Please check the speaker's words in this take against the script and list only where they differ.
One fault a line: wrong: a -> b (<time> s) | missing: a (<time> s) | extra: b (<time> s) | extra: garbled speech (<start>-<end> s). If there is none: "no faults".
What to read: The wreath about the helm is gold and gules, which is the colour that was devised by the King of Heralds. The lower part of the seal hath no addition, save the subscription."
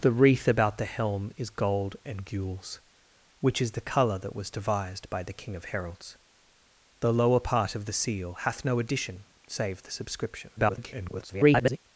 extra: garbled speech (10.6-11.8 s)